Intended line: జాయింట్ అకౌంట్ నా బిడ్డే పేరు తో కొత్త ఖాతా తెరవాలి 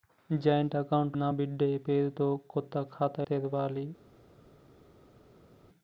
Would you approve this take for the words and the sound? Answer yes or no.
yes